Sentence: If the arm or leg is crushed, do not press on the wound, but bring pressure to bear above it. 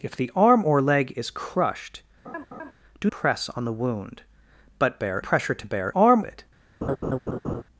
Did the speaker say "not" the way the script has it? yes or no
no